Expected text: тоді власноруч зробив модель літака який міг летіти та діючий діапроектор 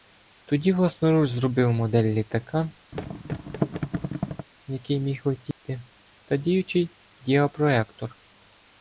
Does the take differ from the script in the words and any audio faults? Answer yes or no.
yes